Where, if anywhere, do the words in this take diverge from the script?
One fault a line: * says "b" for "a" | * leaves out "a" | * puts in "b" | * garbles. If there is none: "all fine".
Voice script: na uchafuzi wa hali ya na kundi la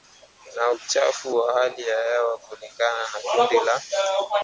* puts in "hewa kulingana"